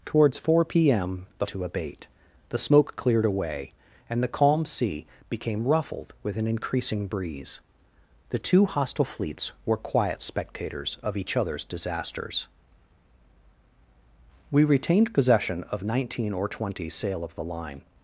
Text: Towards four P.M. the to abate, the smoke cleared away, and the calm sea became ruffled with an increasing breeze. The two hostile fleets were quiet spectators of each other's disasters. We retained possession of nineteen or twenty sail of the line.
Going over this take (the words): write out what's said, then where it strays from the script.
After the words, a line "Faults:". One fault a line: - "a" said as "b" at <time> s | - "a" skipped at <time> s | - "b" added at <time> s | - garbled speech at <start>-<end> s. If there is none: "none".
Towards four P.M. the to abate, the smoke cleared away, and the calm sea became ruffled with an increasing breeze. The two hostile fleets were quiet spectators of each other's disasters. We retained possession of nineteen or twenty sail of the line.
Faults:
none